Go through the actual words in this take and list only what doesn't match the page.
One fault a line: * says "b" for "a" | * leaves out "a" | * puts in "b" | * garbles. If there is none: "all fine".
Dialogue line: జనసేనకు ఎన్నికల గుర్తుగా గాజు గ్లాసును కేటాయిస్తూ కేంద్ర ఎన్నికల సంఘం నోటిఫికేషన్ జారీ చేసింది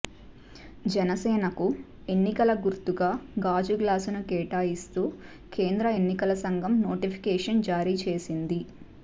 all fine